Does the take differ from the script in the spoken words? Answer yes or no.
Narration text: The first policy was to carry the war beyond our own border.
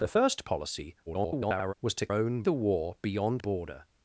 yes